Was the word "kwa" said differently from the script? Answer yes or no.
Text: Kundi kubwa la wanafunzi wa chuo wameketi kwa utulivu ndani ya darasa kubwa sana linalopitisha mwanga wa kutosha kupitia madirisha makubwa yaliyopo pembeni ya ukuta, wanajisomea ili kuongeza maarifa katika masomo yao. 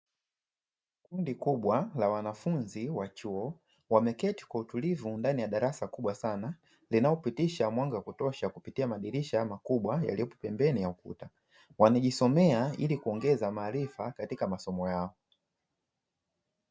no